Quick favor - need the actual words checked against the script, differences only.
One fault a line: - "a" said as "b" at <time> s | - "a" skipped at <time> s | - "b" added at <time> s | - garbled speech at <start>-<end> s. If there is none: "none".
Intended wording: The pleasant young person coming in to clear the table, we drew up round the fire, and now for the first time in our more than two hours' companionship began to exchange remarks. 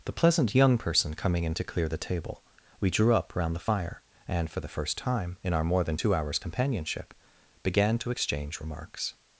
- "now" skipped at 4.5 s